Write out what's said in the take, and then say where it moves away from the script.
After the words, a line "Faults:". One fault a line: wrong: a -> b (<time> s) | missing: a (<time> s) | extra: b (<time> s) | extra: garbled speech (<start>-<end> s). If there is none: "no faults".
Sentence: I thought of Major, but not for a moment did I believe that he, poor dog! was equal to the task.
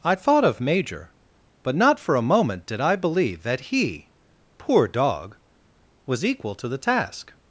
I thought of Major, but not for a moment did I believe that he, poor dog! was equal to the task.
Faults:
no faults